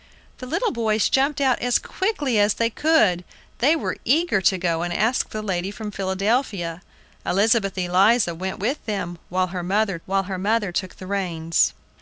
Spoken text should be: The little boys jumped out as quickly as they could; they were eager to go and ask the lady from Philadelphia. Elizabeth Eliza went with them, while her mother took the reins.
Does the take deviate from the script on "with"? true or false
false